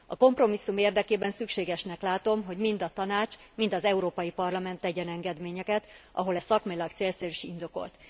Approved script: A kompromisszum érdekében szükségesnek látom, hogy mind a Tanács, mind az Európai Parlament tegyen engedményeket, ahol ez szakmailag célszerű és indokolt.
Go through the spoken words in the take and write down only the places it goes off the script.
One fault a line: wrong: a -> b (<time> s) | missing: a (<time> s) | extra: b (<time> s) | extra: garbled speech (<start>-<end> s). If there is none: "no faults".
no faults